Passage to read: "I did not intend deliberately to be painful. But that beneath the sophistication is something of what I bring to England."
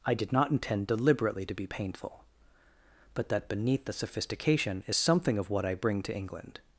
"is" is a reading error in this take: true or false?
false